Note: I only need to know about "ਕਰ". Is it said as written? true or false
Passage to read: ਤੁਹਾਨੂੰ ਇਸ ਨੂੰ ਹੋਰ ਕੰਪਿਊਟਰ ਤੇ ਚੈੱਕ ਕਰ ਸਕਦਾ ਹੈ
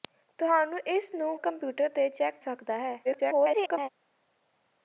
false